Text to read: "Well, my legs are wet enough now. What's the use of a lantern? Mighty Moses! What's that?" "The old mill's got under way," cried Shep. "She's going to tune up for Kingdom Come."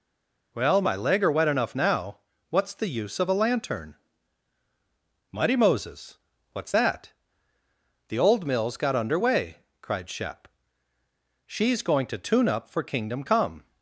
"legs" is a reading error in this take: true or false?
true